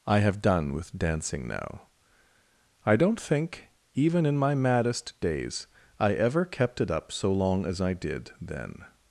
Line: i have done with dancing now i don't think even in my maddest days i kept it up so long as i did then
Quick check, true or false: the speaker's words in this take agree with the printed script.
false